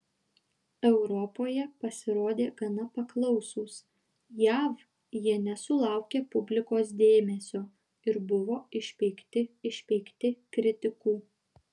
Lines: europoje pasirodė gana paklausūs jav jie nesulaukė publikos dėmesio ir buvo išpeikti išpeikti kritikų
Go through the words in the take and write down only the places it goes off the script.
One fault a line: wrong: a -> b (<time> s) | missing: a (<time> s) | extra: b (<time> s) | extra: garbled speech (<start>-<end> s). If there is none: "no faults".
no faults